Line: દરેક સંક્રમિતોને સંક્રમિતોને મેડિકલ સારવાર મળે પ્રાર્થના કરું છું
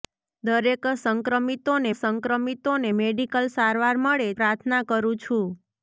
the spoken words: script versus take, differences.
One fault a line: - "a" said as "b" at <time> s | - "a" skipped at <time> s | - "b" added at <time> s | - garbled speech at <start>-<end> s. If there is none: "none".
none